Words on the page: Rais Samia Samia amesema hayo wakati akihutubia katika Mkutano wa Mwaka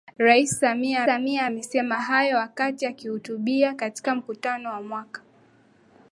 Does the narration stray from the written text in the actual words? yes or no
no